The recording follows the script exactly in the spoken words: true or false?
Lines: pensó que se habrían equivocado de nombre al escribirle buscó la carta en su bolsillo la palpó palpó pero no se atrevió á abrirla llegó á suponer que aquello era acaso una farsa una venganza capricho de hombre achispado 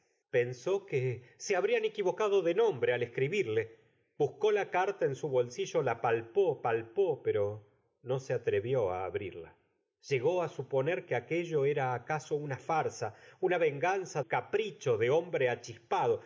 true